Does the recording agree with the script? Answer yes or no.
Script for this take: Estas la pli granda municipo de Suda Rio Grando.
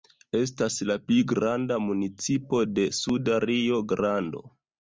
yes